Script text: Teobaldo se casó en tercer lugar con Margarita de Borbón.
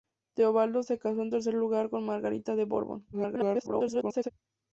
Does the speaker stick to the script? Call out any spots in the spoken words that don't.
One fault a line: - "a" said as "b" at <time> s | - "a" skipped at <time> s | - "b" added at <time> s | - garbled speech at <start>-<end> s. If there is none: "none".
- garbled speech at 3.1-4.3 s